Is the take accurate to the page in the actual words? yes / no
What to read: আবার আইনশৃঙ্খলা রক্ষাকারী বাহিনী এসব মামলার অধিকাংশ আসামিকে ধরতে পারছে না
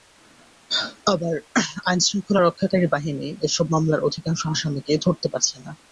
yes